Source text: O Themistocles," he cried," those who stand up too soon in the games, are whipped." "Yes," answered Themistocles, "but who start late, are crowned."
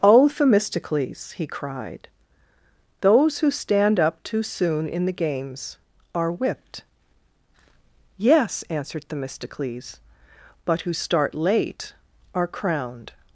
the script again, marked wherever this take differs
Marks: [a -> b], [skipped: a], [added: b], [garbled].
O Themistocles," he cried," those who stand up too soon in the games, are whipped." "Yes," answered Themistocles, "but who start late, are crowned."